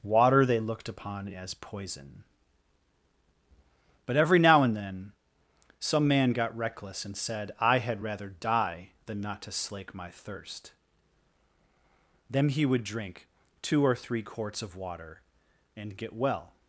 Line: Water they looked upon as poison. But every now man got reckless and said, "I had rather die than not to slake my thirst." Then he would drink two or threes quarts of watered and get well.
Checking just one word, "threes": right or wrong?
wrong